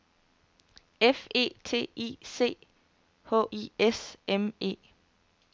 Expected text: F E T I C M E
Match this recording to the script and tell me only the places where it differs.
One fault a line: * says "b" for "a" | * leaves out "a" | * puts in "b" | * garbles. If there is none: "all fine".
* puts in "H I S"